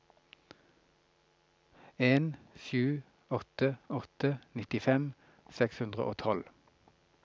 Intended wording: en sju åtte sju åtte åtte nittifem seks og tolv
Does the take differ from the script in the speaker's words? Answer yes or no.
yes